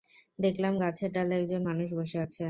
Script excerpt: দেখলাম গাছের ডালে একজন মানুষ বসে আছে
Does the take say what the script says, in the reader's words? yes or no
yes